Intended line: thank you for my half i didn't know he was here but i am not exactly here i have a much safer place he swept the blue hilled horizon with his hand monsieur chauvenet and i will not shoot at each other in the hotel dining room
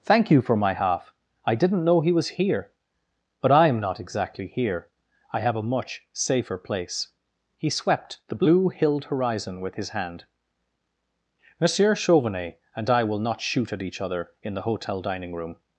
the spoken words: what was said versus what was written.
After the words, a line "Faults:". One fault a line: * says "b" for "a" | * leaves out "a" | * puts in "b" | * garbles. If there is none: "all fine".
thank you for my half i didn't know he was here but i am not exactly here i have a much safer place he swept the blue hilled horizon with his hand monsieur chauvenet and i will not shoot at each other in the hotel dining room
Faults:
all fine